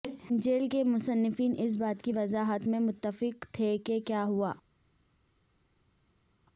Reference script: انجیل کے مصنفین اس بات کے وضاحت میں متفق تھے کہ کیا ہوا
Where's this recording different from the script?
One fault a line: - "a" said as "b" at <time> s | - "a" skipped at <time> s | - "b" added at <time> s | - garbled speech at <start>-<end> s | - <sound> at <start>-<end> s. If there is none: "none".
- "کے" said as "کی" at 2.0 s